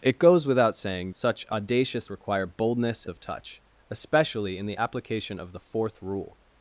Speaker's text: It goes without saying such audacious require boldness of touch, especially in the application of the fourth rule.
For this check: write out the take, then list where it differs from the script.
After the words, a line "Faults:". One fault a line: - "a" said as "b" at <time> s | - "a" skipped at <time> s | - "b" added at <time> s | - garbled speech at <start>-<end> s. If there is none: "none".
It goes without saying such audacious require boldness of touch, especially in the application of the fourth rule.
Faults:
none